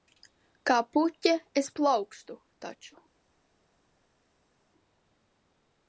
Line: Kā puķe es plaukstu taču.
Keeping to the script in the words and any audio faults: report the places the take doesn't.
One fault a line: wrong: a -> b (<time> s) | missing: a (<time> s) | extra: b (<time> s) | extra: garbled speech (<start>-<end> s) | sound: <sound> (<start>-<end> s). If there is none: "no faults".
no faults